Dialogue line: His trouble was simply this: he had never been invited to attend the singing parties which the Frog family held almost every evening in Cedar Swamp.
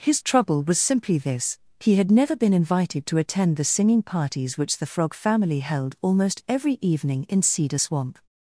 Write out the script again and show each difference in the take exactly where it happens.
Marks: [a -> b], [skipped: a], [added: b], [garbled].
His trouble was simply this: he had never been invited to attend the singing parties which the Frog family held almost every evening in Cedar Swamp.